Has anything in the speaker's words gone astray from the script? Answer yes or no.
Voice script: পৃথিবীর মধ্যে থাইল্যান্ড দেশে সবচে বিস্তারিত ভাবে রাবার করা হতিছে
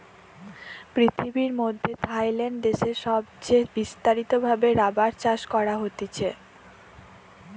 yes